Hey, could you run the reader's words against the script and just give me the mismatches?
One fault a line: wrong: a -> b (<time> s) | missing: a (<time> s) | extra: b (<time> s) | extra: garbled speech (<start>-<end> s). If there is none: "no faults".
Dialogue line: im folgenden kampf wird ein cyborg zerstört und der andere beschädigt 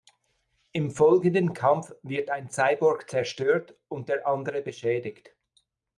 no faults